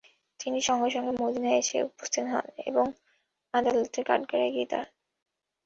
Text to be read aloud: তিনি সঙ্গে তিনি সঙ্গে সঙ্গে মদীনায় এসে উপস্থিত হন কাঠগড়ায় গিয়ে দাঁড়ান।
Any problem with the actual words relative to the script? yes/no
yes